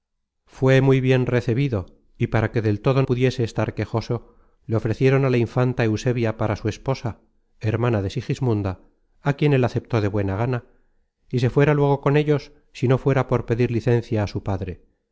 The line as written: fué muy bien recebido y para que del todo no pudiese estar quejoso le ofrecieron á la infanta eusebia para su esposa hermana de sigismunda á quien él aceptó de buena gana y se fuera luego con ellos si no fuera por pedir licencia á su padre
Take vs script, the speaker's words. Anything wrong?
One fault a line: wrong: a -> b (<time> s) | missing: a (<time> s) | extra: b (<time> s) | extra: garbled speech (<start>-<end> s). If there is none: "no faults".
missing: no (3.0 s)